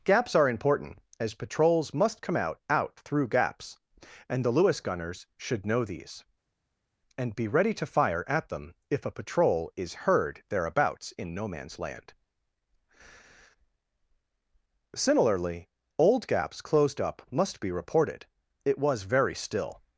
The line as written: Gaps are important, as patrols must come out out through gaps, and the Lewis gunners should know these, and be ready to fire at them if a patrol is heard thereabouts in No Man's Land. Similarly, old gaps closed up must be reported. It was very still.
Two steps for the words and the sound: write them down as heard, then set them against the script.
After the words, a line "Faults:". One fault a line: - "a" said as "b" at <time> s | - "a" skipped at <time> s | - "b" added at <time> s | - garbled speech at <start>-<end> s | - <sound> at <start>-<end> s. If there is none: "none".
Gaps are important, as patrols must come out out through gaps, and the Lewis gunners should know these, and be ready to fire at them if a patrol is heard thereabouts in No Man's Land. Similarly, old gaps closed up must be reported. It was very still.
Faults:
none